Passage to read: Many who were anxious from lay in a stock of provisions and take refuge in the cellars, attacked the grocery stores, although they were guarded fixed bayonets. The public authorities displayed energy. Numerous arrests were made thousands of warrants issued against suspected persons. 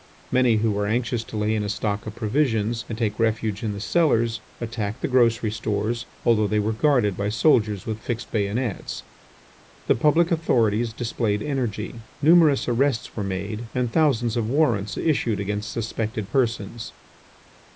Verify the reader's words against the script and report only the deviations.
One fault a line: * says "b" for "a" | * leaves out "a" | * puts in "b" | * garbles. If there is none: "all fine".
* says "to" for "from"
* puts in "by soldiers with"
* puts in "and"